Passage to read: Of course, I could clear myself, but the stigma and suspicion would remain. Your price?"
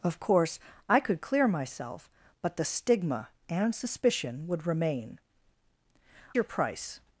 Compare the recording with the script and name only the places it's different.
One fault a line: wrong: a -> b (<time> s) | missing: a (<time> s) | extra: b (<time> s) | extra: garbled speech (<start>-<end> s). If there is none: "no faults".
no faults